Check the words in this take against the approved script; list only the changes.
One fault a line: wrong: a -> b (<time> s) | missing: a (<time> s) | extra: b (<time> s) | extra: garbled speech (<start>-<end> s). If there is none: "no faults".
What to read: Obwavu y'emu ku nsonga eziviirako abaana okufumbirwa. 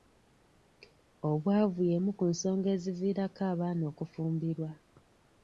no faults